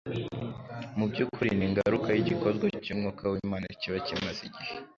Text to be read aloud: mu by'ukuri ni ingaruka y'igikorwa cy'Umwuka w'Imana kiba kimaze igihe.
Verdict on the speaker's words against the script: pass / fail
pass